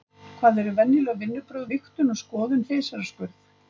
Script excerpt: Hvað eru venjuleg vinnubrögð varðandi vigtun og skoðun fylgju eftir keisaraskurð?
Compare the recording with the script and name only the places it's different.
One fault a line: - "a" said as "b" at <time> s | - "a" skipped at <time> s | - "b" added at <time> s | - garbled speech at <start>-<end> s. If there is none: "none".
- "varðandi" skipped at 1.7 s
- "fylgju eftir" skipped at 2.7 s